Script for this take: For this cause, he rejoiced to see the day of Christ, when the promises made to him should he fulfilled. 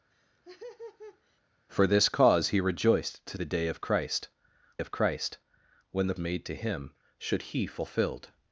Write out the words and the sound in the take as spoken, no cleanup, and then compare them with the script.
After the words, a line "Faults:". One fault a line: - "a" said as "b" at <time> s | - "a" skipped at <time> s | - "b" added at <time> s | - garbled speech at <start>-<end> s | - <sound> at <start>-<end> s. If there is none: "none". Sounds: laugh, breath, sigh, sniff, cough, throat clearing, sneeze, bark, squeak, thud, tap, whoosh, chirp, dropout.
For this cause, he rejoiced to the day of Christ of Christ, when the made to him should he fulfilled.
Faults:
- laugh at 0.1-1.4 s
- "see" skipped at 3.4 s
- "of Christ" added at 4.8 s
- "promises" skipped at 6.2 s